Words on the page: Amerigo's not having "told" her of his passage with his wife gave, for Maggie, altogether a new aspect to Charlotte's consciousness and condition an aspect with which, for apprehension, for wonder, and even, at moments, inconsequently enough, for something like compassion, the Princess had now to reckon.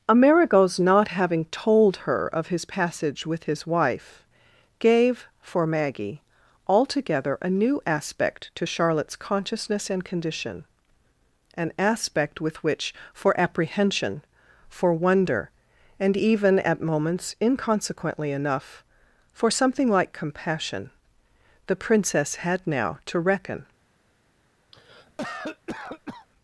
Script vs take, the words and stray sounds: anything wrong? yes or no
yes